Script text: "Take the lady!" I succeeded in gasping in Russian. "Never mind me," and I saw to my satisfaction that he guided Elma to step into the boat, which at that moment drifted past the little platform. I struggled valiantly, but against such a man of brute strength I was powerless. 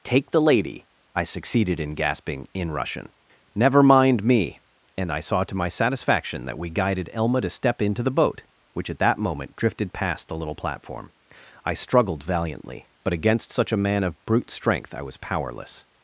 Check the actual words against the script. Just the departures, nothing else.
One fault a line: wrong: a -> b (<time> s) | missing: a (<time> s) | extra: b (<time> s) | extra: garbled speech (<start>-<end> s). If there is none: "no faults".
wrong: he -> we (6.6 s)